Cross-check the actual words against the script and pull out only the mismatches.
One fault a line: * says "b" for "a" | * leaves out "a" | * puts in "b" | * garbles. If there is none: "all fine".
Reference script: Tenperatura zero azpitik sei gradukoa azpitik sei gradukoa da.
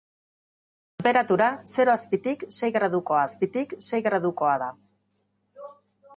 all fine